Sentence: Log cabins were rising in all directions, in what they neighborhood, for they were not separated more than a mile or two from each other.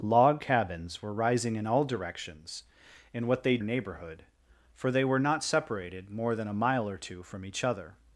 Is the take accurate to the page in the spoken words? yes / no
yes